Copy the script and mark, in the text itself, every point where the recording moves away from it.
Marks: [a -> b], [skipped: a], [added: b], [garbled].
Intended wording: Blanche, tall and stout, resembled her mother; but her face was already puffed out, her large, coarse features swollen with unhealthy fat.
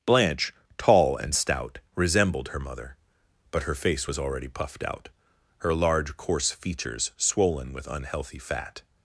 Blanche, tall and stout, resembled her mother; but her face was already puffed out, her large, coarse features swollen with unhealthy fat.